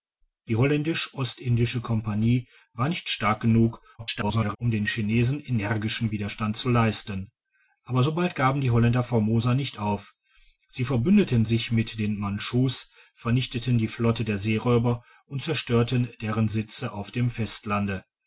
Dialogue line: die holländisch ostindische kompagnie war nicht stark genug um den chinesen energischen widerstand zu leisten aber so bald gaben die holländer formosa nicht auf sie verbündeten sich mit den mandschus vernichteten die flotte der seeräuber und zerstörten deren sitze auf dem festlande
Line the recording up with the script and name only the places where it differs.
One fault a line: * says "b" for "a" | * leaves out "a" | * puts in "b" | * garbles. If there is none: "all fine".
* garbles